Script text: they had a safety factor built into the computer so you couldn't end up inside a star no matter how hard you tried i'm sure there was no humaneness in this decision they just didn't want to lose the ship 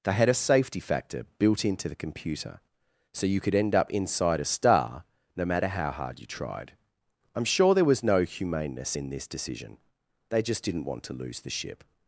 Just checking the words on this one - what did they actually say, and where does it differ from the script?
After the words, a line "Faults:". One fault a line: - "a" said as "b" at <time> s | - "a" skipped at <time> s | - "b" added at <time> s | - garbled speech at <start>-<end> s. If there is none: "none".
they had a safety factor built into the computer so you could end up inside a star no matter how hard you tried i'm sure there was no humaneness in this decision they just didn't want to lose the ship
Faults:
- "couldn't" said as "could" at 3.4 s